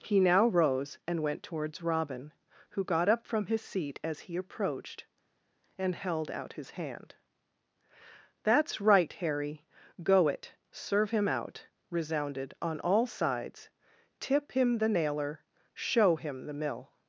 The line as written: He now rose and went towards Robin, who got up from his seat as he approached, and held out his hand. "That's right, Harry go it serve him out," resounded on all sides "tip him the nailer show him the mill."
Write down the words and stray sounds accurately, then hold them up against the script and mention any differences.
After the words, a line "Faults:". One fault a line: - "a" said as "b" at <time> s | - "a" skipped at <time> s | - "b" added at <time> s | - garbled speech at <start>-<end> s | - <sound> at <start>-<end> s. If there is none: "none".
He now rose and went towards Robin, who got up from his seat as he approached, and held out his hand. "That's right, Harry go it serve him out," resounded on all sides "tip him the nailer show him the mill."
Faults:
none